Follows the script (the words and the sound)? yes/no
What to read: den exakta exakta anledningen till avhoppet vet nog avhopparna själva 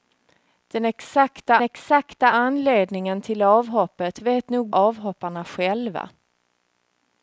yes